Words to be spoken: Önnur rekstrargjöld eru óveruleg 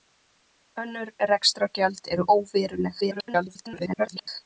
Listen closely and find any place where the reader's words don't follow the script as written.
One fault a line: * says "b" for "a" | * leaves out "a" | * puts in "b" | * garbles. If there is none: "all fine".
* garbles